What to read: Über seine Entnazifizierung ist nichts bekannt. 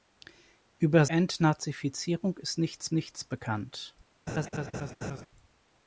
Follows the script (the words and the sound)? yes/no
no